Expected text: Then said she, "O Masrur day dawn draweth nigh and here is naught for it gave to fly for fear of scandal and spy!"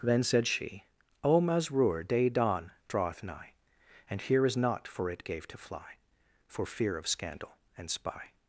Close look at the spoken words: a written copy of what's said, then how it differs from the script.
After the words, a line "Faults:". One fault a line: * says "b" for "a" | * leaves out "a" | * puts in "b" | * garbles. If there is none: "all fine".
Then said she, "O Masrur day dawn draweth nigh and here is naught for it gave to fly for fear of scandal and spy!"
Faults:
all fine